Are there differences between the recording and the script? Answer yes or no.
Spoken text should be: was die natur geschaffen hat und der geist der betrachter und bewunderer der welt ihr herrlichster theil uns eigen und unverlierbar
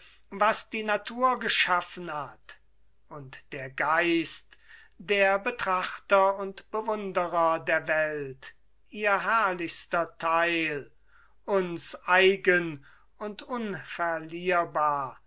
no